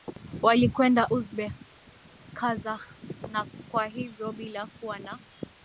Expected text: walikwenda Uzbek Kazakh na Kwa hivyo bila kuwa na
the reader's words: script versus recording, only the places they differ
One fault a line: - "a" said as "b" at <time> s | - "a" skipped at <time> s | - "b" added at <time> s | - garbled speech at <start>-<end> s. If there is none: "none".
none